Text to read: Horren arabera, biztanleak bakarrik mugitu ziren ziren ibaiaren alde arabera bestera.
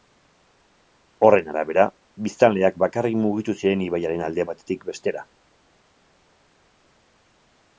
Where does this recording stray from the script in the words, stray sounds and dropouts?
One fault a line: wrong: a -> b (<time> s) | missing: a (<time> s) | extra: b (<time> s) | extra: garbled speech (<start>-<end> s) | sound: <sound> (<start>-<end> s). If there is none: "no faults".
missing: ziren (3.9 s)
wrong: arabera -> batetik (4.5 s)